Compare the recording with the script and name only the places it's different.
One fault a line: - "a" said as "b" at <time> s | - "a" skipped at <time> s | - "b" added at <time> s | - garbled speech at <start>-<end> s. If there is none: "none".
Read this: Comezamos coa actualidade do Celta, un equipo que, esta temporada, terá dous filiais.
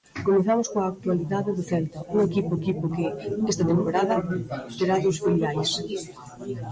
- "equipo" added at 2.6 s